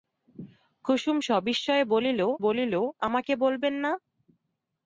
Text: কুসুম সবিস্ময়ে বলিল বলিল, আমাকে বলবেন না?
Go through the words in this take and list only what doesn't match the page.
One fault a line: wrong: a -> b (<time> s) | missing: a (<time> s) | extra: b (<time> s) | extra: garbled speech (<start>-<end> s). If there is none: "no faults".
no faults